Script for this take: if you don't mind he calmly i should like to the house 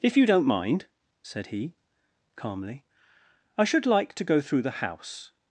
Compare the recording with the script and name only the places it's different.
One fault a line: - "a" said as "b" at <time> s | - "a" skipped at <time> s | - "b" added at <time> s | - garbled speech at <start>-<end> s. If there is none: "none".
- "said" added at 1.2 s
- "go through" added at 4.2 s